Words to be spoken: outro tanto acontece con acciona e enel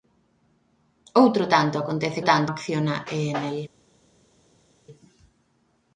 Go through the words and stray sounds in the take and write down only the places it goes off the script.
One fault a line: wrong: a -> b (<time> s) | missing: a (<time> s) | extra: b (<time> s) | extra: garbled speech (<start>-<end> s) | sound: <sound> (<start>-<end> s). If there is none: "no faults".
wrong: con -> tanto (2.2 s)